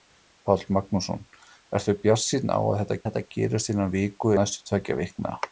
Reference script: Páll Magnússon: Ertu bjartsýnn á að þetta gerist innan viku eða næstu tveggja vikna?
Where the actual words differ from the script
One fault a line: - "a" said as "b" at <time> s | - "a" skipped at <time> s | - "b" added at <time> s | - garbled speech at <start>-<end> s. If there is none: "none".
- "þetta" added at 3.1 s
- "eða" skipped at 4.4 s